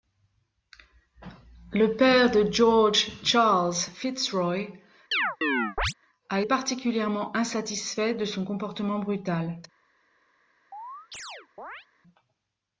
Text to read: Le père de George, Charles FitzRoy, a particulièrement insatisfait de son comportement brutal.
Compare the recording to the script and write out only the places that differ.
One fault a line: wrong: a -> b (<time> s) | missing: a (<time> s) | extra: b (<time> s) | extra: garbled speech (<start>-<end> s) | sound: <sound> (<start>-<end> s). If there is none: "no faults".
sound: chirp (5.1-5.9 s)
sound: chirp (10.7-11.9 s)